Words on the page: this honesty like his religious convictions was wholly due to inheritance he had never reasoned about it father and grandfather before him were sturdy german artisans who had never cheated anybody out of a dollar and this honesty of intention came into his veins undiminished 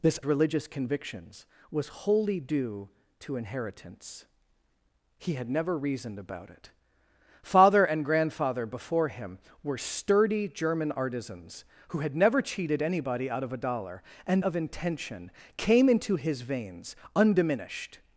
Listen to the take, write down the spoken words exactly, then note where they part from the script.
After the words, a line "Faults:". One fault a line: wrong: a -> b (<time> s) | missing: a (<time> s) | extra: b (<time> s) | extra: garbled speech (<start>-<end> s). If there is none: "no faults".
this religious convictions was wholly due to inheritance he had never reasoned about it father and grandfather before him were sturdy german artisans who had never cheated anybody out of a dollar and of intention came into his veins undiminished
Faults:
missing: honesty like his (0.2 s)
missing: this honesty (14.4 s)